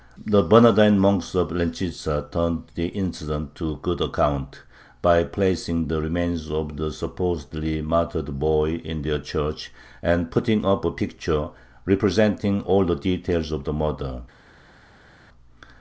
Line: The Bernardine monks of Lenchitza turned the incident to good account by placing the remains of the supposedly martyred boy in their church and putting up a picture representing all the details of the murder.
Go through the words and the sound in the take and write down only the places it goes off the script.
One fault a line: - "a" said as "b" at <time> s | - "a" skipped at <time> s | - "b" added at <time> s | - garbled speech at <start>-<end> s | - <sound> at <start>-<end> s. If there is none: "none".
none